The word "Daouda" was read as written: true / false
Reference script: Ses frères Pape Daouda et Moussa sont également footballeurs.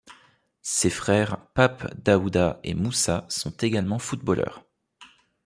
true